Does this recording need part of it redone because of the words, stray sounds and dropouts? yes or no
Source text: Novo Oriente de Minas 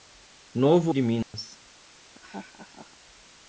yes